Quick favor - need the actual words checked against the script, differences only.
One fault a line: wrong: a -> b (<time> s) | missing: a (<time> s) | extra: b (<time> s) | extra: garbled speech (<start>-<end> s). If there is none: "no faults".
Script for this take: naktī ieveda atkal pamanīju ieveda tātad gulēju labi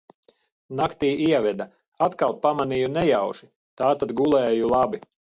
wrong: ieveda -> nejauši (3.0 s)